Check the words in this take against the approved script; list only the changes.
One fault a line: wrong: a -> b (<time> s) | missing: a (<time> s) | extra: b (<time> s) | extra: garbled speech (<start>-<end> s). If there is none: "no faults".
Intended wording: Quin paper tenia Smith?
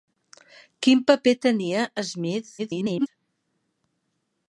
extra: garbled speech (2.6-3.1 s)